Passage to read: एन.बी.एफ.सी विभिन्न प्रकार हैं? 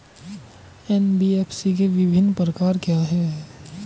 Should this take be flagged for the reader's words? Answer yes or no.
yes